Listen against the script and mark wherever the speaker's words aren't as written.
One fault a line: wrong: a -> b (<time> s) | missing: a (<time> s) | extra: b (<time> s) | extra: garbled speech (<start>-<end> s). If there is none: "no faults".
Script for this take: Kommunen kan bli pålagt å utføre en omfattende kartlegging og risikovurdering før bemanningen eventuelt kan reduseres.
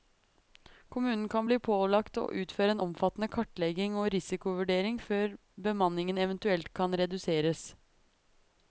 no faults